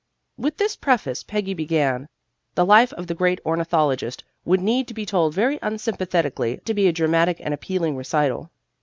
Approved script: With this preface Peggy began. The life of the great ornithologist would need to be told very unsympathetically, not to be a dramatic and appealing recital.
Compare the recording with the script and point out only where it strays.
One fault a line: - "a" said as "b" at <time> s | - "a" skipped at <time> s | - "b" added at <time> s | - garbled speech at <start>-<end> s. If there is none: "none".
- "not" skipped at 6.6 s